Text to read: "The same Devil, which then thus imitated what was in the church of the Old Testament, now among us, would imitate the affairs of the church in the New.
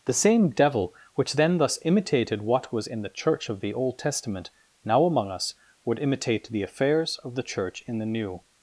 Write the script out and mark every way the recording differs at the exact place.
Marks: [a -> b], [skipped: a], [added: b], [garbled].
"The same Devil, which then thus imitated what was in the church of the Old Testament, now among us, would imitate the affairs of the church in the New.